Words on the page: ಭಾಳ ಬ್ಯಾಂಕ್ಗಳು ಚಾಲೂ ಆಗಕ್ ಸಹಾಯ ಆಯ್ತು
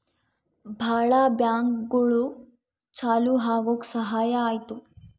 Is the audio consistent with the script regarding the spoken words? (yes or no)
yes